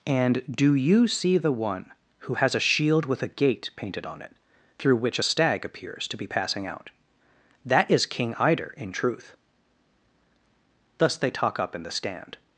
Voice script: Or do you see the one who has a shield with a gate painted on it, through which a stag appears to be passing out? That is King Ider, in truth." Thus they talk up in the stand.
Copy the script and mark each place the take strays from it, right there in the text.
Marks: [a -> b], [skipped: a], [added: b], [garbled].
[Or -> And] do you see the one who has a shield with a gate painted on it, through which a stag appears to be passing out? That is King Ider, in truth." Thus they talk up in the stand.